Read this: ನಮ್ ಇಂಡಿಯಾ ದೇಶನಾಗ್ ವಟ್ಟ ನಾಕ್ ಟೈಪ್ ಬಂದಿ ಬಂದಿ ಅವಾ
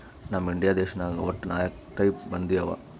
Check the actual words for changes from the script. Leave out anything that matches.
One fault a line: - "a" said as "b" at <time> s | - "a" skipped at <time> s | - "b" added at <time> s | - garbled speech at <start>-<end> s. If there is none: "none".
- "ಬಂದಿ" skipped at 2.6 s